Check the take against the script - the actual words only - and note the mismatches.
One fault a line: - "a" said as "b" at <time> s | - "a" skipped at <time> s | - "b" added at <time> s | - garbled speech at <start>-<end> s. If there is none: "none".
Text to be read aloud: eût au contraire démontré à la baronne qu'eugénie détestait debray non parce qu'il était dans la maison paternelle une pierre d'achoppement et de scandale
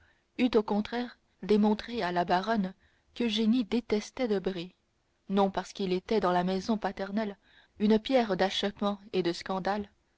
none